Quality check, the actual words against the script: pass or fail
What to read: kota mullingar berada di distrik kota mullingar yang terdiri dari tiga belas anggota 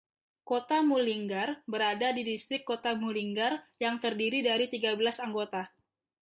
pass